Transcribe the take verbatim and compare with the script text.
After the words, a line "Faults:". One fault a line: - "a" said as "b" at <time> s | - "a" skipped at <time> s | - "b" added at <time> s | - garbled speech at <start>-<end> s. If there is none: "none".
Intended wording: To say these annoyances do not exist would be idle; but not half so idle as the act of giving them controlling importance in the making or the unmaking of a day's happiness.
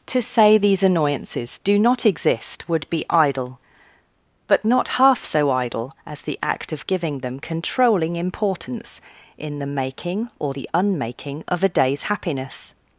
To say these annoyances do not exist would be idle; but not half so idle as the act of giving them controlling importance in the making or the unmaking of a day's happiness.
Faults:
none